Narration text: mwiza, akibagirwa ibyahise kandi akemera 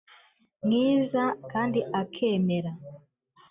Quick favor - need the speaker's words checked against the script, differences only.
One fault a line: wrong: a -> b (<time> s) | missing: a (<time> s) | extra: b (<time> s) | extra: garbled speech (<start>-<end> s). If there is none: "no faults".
missing: akibagirwa ibyahise (1.2 s)